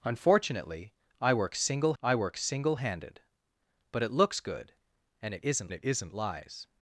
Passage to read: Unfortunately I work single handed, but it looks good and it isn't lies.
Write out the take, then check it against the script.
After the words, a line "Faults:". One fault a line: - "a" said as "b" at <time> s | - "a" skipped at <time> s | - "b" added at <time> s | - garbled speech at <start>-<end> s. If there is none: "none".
Unfortunately I work single I work single handed, but it looks good and it isn't it isn't lies.
Faults:
- "I work single" added at 2.0 s
- "it isn't" added at 5.7 s